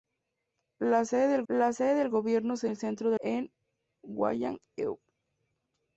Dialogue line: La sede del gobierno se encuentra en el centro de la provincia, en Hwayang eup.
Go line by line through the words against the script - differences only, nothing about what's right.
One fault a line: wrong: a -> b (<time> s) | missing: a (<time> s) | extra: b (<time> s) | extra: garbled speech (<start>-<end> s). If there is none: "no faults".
extra: la sede del (1.5 s)
missing: encuentra (2.7 s)
missing: la provincia (3.2 s)